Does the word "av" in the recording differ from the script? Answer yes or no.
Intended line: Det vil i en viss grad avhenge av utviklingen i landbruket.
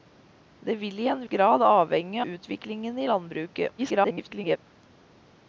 yes